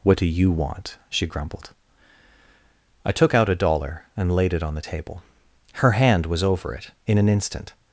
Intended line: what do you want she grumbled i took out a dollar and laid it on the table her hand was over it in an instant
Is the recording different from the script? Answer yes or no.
no